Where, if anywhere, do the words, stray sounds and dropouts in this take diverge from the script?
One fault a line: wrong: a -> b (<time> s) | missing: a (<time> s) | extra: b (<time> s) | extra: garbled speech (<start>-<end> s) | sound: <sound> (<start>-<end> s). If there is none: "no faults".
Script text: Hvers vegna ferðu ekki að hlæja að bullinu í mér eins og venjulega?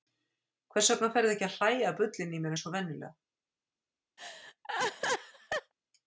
sound: laugh (4.2-5.7 s)